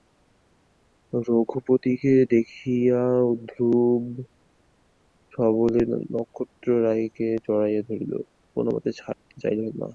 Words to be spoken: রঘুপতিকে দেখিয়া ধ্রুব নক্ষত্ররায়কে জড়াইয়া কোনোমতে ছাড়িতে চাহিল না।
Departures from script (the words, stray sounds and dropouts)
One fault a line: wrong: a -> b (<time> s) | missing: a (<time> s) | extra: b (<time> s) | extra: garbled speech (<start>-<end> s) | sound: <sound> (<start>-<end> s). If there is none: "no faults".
extra: সবলে (5.3 s)
extra: ধরিল (7.9 s)
sound: dropout (9.1-9.3 s)